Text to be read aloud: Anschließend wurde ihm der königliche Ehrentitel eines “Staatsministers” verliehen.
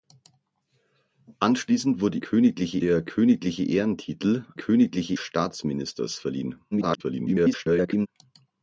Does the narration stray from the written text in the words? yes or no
yes